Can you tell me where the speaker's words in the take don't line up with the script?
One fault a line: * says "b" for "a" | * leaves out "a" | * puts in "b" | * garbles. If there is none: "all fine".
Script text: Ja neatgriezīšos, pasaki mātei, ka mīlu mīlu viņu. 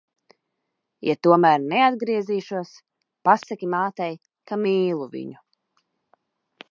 * puts in "tomēr"
* leaves out "mīlu"